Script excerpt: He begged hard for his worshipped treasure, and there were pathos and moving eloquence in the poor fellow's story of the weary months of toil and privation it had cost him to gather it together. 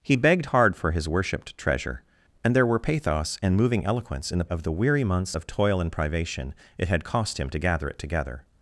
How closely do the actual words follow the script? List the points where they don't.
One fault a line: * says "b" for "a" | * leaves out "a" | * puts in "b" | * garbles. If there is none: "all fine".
* leaves out "poor fellow's story"